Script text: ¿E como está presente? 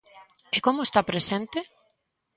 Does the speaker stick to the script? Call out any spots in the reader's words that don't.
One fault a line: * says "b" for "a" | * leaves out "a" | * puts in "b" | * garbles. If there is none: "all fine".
all fine